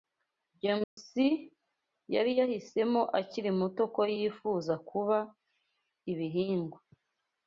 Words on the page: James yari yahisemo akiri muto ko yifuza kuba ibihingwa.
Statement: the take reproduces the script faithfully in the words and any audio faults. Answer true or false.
false